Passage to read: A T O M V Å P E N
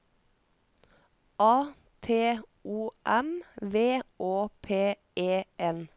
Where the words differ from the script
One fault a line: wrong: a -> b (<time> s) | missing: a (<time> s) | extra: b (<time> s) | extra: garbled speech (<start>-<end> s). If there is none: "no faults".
no faults